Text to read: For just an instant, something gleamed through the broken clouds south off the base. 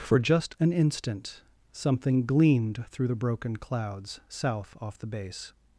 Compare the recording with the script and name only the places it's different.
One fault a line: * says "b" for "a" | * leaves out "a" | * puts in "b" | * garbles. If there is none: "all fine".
all fine